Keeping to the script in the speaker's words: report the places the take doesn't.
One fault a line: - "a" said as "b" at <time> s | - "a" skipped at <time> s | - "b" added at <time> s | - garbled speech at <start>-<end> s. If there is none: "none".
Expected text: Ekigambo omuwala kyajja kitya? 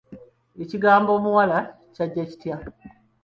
none